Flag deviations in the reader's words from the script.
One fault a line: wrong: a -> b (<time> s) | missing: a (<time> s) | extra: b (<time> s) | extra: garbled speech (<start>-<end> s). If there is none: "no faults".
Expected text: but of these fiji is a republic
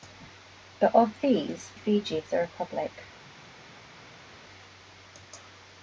no faults